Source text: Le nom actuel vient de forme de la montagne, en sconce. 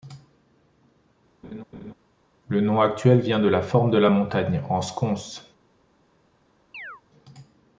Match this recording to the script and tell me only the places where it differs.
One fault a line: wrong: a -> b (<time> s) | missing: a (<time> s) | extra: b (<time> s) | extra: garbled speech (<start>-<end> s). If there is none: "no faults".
extra: la (3.5 s)